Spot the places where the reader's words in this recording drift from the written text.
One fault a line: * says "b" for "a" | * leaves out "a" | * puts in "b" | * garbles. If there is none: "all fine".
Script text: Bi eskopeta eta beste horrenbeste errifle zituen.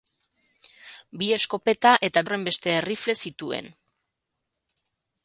* leaves out "beste"